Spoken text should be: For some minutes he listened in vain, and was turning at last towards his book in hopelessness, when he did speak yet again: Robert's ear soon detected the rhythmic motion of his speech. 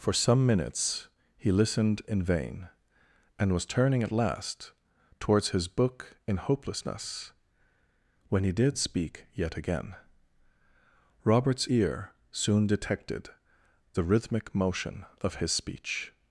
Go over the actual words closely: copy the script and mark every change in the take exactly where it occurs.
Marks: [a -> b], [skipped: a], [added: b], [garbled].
For some minutes he listened in vain, and was turning at last towards his book in hopelessness, when he did speak yet again: Robert's ear soon detected the rhythmic motion of his speech.